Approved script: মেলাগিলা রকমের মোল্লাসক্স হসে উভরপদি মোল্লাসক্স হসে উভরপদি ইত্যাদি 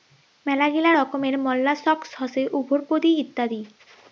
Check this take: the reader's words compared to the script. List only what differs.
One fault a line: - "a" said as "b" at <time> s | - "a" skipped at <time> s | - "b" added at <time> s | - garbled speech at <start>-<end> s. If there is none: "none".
- "মোল্লাসক্স হসে উভরপদি" skipped at 3.1 s